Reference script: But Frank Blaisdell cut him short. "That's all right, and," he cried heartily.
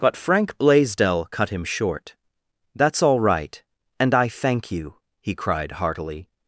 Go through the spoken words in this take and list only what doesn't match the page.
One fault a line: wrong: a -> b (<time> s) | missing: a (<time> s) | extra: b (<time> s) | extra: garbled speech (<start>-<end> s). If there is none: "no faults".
extra: I thank you (4.1 s)